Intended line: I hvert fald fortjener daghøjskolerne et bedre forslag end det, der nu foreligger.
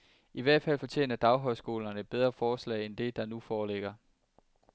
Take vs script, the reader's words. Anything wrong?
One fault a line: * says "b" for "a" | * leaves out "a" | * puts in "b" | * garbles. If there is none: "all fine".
all fine